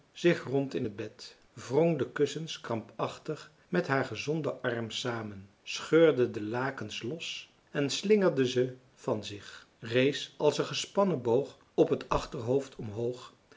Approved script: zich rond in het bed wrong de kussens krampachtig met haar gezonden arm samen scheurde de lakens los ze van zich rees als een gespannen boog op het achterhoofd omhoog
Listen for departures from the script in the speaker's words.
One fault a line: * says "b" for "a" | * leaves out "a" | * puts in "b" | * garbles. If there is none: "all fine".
* puts in "en slingerde"